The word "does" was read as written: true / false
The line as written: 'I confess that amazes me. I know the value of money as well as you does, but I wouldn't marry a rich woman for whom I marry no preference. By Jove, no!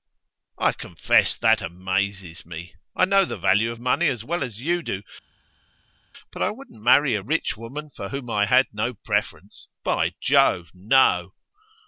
false